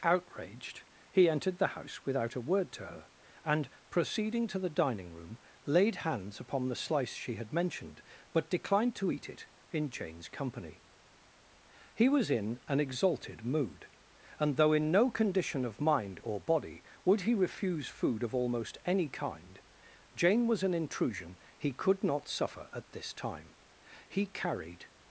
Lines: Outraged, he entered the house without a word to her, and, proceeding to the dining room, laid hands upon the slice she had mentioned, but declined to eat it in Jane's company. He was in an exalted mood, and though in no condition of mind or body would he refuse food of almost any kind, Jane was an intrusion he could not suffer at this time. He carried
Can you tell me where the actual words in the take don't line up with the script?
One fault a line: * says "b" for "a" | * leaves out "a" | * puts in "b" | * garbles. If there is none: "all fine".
all fine